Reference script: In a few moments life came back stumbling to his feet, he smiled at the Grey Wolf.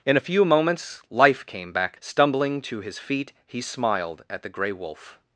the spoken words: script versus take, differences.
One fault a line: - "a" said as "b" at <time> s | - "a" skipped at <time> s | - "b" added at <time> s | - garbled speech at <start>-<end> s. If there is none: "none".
none